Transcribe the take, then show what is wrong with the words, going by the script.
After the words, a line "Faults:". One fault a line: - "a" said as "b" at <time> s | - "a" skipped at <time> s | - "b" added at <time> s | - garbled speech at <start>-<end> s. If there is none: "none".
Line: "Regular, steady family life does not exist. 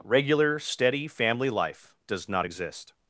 "Regular, steady family life does not exist.
Faults:
none